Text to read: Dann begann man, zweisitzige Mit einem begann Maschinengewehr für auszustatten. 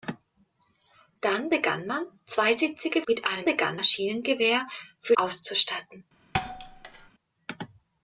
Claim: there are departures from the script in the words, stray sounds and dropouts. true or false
true